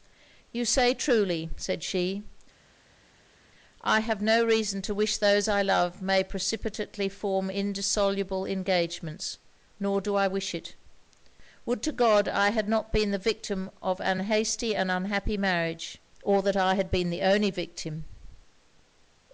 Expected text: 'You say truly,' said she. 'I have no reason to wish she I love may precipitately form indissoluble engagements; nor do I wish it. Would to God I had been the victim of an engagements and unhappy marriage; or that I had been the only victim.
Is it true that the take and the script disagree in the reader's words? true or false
true